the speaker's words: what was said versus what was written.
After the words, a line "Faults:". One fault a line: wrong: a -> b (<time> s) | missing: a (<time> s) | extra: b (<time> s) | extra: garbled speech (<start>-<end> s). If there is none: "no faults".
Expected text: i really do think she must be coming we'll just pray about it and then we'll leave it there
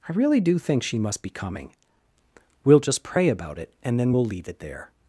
i really do think she must be coming we'll just pray about it and then we'll leave it there
Faults:
no faults